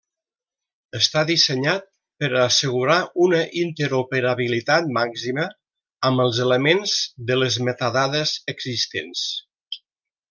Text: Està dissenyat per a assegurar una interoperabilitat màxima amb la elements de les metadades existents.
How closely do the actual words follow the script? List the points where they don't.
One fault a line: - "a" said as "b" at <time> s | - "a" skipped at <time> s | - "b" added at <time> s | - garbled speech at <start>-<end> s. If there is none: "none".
- "la" said as "els" at 6.3 s